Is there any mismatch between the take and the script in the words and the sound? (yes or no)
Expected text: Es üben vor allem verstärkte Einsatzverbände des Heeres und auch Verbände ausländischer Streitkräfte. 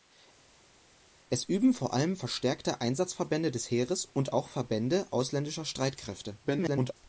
yes